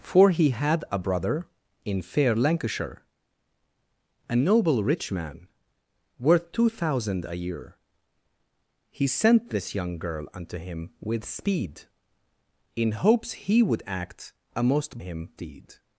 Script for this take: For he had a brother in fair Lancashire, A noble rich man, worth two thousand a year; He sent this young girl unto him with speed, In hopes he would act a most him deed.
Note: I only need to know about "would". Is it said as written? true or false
true